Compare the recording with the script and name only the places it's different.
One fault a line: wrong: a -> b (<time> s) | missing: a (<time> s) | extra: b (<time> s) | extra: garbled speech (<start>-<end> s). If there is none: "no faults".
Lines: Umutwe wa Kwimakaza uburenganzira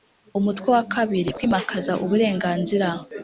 extra: kabiri (0.9 s)